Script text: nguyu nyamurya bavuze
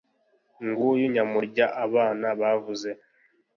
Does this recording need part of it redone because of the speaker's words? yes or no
yes